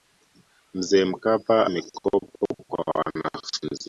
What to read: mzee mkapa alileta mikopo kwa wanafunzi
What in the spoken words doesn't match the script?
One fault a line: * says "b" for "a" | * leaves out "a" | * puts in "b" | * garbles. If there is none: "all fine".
* leaves out "alileta"